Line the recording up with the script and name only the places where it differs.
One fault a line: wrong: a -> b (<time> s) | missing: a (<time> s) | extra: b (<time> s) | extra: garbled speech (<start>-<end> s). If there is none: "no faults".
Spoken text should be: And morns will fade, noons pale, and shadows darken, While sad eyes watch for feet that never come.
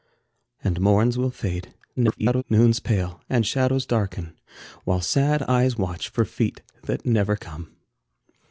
extra: garbled speech (2.0-2.4 s)